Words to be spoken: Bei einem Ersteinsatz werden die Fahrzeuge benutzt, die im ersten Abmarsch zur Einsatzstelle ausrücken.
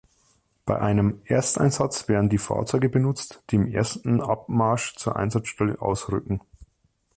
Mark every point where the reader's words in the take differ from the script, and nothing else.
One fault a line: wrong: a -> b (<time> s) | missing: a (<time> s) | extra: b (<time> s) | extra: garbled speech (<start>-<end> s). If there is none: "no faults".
no faults